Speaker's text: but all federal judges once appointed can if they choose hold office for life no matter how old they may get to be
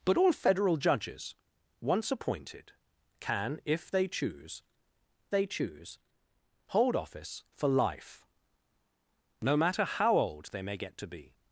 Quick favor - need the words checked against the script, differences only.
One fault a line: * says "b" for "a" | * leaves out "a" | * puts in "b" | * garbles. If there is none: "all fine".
* puts in "they choose"